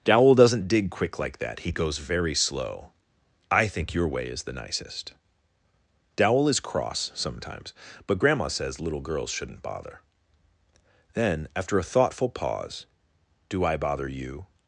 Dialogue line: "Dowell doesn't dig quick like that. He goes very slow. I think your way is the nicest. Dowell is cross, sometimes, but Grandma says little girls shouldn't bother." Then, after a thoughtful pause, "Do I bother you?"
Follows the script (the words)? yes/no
yes